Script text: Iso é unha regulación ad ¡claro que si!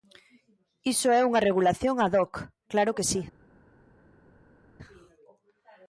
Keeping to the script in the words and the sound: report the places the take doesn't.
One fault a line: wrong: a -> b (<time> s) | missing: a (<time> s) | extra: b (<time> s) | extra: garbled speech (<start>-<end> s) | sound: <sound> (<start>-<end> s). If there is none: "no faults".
extra: hoc (2.2 s)